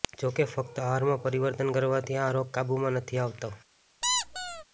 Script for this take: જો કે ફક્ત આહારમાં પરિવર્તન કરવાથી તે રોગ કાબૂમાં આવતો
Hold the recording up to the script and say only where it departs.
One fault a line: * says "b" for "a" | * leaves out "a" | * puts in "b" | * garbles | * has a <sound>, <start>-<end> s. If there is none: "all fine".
* says "આ" for "તે"
* puts in "નથી"
* has a squeak, 4.0-4.6 s